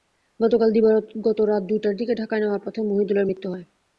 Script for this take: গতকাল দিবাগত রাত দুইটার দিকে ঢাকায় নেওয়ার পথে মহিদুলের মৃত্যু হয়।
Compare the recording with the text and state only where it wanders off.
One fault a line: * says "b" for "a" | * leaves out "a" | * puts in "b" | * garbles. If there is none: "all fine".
all fine